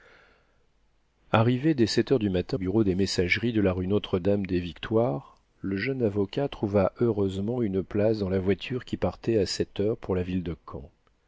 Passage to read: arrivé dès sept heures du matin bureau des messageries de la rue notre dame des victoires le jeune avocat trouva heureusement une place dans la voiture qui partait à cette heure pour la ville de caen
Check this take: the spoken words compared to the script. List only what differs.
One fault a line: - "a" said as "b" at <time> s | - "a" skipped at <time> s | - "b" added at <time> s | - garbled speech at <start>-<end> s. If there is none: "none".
none